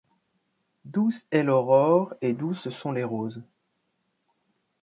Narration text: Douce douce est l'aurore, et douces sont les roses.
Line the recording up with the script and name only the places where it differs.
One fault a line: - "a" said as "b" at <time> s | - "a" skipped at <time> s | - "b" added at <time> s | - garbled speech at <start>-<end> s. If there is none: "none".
- "douce" skipped at 1.3 s